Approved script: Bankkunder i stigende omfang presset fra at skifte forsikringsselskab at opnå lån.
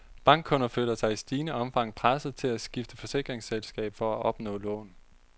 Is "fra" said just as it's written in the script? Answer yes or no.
no